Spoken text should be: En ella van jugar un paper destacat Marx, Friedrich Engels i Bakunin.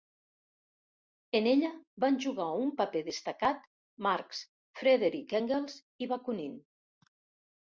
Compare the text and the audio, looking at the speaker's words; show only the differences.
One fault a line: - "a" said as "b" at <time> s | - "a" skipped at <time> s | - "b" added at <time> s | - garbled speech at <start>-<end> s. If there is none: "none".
none